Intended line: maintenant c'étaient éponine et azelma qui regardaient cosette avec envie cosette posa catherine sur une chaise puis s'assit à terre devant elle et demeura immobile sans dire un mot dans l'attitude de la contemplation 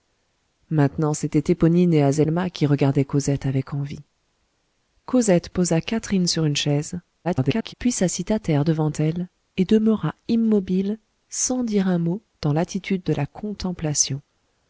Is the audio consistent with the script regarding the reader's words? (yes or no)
no